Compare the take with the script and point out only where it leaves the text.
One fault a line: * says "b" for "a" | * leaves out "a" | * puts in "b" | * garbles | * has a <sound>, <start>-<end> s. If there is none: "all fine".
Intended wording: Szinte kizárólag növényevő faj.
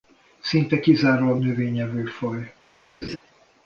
* has a laugh, 3.0-3.2 s